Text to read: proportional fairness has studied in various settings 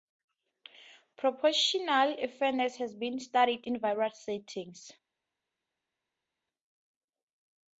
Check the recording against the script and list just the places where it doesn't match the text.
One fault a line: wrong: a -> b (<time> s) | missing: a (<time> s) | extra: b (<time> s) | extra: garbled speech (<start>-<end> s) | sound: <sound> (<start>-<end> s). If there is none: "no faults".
extra: been (3.0 s)